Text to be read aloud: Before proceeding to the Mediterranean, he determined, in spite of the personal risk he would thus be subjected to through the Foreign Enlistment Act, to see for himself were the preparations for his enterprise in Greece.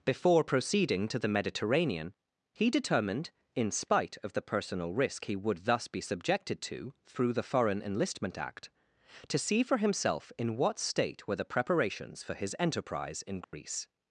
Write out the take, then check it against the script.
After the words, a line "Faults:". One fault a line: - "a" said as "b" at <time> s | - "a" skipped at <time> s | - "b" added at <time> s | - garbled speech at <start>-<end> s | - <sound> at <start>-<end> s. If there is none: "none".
Before proceeding to the Mediterranean, he determined, in spite of the personal risk he would thus be subjected to through the Foreign Enlistment Act, to see for himself in what state were the preparations for his enterprise in Greece.
Faults:
- "in what state" added at 10.4 s
- dropout at 13.4-13.5 s